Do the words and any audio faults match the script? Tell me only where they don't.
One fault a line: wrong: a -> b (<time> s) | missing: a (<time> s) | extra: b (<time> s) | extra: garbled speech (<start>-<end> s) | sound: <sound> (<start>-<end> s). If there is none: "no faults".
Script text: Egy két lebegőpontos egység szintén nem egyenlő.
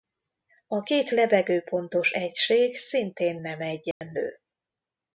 wrong: Egy -> A (0.7 s)
sound: dropout (3.9-4.0 s)